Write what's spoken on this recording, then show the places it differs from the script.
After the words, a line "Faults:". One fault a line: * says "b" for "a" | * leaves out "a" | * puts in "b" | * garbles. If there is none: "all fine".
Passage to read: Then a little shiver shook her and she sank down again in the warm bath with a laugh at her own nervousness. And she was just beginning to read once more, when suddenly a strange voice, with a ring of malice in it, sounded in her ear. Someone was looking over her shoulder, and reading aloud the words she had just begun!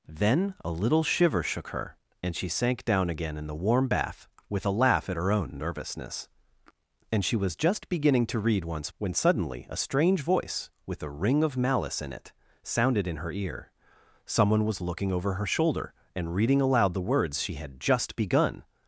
Then a little shiver shook her and she sank down again in the warm bath with a laugh at her own nervousness. And she was just beginning to read once when suddenly a strange voice, with a ring of malice in it, sounded in her ear. Someone was looking over her shoulder, and reading aloud the words she had just begun!
Faults:
* leaves out "more"